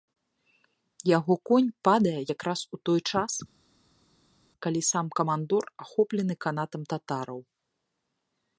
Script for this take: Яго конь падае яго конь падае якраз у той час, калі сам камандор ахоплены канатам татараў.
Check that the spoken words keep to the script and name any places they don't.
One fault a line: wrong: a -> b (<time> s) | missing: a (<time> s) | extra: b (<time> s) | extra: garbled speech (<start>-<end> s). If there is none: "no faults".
missing: яго конь падае (2.2 s)